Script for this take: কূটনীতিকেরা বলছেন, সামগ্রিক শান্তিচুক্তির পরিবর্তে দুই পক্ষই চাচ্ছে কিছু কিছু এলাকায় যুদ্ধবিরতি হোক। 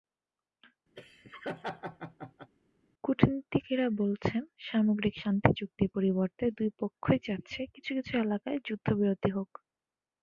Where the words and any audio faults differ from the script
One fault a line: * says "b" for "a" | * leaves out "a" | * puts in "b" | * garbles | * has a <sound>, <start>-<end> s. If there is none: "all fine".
* has a laugh, 1.0-2.5 s